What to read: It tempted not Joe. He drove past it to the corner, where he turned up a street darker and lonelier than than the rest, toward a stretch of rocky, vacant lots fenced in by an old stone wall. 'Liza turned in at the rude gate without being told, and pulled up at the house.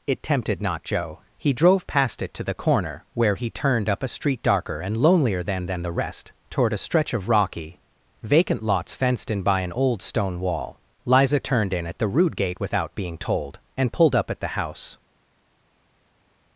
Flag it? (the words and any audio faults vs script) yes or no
no